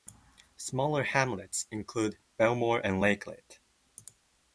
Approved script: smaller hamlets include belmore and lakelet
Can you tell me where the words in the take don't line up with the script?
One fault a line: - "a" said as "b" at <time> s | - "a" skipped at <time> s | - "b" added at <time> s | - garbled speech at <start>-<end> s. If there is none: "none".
none